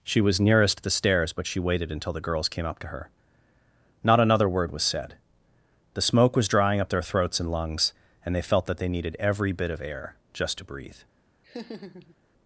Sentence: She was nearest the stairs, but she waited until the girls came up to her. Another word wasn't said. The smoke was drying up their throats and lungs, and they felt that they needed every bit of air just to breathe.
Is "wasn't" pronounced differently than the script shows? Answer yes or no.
yes